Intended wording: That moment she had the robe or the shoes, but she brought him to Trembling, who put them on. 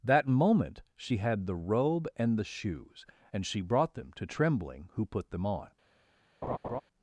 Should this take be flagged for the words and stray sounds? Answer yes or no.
yes